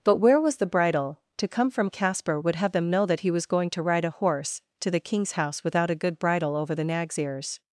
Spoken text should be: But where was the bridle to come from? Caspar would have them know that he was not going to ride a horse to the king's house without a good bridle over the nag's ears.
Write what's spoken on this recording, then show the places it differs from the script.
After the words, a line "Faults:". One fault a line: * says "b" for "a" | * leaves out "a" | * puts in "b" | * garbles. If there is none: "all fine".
But where was the bridle to come from? Caspar would have them know that he was going to ride a horse to the king's house without a good bridle over the nag's ears.
Faults:
* leaves out "not"